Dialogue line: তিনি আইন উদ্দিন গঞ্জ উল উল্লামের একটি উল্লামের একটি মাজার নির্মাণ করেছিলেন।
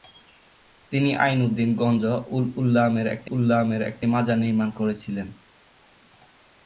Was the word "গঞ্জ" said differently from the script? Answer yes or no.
no